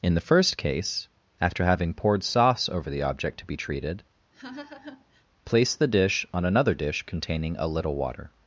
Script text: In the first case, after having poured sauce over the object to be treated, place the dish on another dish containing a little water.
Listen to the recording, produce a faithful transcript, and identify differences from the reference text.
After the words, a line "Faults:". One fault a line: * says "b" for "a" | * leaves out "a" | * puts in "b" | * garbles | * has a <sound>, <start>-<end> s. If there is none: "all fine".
In the first case, after having poured sauce over the object to be treated, place the dish on another dish containing a little water.
Faults:
* has a laugh, 4.3-5.2 s